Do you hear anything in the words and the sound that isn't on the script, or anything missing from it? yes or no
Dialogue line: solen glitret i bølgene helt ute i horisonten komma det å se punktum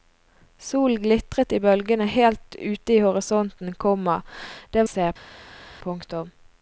no